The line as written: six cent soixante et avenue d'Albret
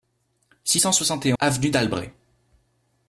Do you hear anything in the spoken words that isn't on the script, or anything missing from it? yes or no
no